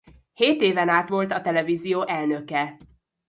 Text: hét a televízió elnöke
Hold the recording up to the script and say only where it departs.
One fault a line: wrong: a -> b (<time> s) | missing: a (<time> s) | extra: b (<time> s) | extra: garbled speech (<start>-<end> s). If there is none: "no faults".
extra: éven át volt (0.6 s)